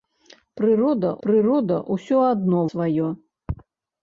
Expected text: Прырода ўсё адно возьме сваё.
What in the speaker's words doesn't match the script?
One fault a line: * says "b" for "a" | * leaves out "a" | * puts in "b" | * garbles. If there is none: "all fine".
* puts in "прырода"
* leaves out "возьме"